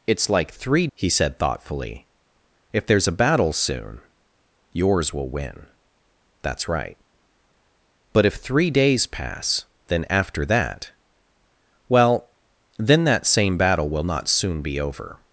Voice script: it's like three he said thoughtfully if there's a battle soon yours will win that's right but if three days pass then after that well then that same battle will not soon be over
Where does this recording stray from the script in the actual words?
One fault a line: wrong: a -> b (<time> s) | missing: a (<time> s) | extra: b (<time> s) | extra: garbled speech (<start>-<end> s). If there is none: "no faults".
no faults